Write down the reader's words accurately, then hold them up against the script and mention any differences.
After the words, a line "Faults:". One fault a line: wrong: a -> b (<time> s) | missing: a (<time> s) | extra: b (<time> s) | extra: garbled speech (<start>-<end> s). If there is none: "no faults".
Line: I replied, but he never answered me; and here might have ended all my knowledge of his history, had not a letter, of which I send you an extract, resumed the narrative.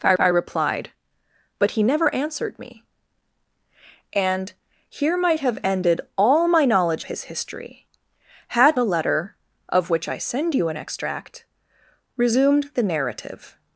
I I replied, but he never answered me; and here might have ended all my knowledge his history, had a letter, of which I send you an extract, resumed the narrative.
Faults:
extra: I (0.2 s)
missing: of (7.0 s)
missing: not (8.8 s)